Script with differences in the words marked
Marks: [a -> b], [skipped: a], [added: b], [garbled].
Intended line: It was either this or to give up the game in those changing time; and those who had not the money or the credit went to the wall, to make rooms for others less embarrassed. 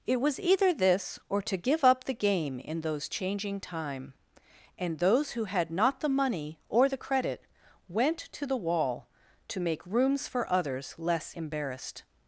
It was either this or to give up the game in those changing time; and those who had not the money or the credit went to the wall, to make rooms for others less embarrassed.